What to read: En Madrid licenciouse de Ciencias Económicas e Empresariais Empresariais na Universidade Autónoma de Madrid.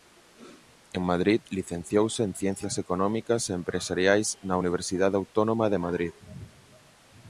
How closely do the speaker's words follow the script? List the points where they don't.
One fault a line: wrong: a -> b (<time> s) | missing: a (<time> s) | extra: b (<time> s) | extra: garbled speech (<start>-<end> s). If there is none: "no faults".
wrong: de -> en (2.2 s)
missing: Empresariais (4.3 s)